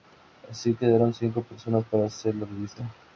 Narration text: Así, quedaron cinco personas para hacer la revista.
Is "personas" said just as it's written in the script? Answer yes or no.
yes